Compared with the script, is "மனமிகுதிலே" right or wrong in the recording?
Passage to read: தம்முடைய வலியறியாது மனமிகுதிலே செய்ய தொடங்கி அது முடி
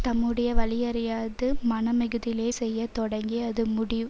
right